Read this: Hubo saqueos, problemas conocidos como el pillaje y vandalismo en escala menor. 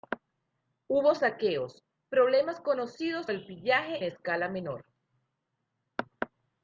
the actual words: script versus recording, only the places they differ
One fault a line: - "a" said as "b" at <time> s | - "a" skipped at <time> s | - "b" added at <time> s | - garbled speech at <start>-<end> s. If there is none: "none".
- "como" skipped at 3.3 s
- "y vandalismo en" skipped at 4.0 s